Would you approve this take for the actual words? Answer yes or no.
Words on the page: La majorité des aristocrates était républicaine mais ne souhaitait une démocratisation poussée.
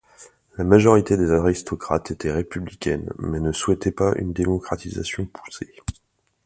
no